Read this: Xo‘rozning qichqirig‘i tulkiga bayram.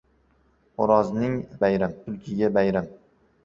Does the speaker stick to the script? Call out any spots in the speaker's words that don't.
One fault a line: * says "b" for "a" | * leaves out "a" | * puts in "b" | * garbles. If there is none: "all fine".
* says "bayram" for "qichqirig‘i"